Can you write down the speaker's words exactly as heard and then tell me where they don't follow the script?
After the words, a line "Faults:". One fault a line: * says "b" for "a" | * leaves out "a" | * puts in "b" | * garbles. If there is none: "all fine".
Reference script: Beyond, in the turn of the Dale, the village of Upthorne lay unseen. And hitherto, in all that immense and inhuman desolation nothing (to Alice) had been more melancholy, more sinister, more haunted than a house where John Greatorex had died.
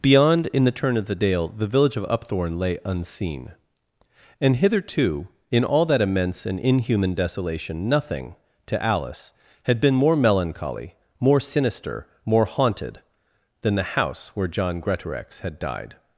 Beyond, in the turn of the Dale, the village of Upthorne lay unseen. And hitherto, in all that immense and inhuman desolation nothing (to Alice) had been more melancholy, more sinister, more haunted than the house where John Greatorex had died.
Faults:
* says "the" for "a"